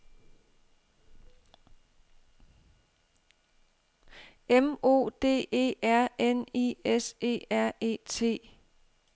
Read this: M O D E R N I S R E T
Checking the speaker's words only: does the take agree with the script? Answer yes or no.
no